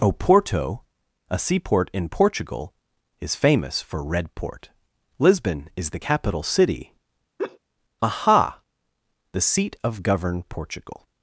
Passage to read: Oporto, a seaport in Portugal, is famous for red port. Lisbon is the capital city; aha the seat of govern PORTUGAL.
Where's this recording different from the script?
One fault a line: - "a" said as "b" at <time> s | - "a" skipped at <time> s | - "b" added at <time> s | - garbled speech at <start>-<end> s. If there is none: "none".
none